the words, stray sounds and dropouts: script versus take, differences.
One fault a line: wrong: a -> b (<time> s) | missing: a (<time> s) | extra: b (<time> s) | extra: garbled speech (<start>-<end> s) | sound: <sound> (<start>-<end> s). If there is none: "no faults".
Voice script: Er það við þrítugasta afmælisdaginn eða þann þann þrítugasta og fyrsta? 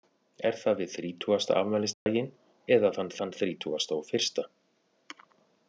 sound: dropout (1.9-2.1 s)